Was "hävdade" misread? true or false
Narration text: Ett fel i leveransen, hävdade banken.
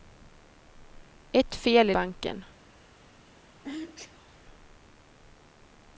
true